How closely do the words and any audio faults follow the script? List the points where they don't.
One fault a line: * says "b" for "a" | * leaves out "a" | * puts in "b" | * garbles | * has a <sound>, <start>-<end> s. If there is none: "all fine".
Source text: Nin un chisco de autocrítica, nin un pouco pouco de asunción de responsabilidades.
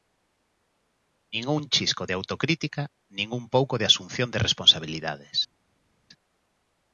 * leaves out "pouco"